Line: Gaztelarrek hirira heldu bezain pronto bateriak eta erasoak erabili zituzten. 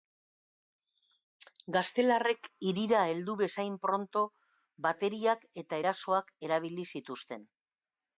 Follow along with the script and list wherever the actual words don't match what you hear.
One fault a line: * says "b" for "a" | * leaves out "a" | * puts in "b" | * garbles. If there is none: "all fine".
all fine